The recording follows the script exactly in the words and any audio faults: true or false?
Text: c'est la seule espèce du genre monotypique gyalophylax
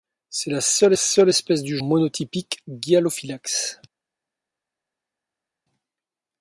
false